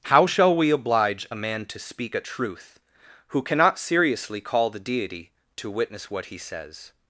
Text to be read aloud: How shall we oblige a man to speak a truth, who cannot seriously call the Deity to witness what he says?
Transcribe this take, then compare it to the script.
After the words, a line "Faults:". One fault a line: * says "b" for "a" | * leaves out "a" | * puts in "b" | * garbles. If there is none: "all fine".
How shall we oblige a man to speak a truth, who cannot seriously call the Deity to witness what he says?
Faults:
all fine